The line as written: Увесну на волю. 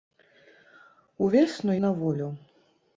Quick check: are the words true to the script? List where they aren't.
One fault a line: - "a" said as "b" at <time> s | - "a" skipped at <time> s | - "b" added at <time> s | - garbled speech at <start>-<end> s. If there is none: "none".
none